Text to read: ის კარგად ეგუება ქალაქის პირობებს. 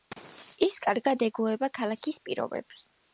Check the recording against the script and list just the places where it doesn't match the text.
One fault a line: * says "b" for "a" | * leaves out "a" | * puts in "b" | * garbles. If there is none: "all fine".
all fine